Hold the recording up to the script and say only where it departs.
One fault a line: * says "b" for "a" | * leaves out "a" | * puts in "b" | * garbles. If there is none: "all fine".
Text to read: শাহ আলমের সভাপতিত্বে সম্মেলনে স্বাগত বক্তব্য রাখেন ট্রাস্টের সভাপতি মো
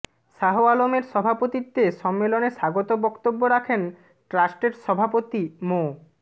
all fine